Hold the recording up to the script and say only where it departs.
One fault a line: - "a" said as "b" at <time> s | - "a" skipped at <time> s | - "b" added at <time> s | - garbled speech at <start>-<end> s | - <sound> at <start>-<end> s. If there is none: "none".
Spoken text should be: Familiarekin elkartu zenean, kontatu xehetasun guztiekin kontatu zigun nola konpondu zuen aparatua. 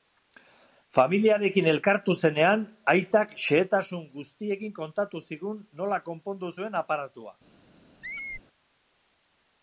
- "kontatu" said as "aitak" at 2.9 s
- squeak at 8.0-8.4 s